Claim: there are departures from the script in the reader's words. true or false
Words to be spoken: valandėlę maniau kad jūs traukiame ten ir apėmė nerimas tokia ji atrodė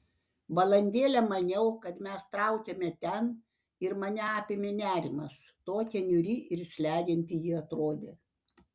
true